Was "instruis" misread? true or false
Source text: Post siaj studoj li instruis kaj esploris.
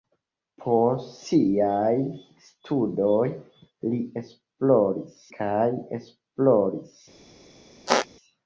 true